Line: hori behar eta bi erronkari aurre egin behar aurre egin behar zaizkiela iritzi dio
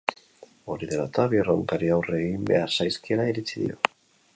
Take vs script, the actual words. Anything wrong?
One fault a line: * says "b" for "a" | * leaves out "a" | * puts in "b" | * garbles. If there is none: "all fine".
* says "dela" for "behar"
* leaves out "aurre egin behar"